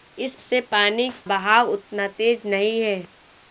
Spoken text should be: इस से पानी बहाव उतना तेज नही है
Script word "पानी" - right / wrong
right